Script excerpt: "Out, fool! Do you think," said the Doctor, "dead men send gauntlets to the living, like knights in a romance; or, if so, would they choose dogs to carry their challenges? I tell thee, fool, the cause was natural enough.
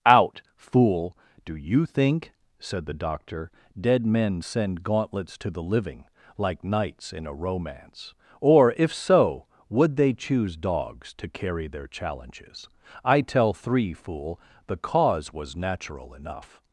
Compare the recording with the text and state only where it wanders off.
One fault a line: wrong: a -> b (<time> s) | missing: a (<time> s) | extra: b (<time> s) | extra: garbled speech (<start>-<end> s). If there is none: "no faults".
wrong: thee -> three (13.5 s)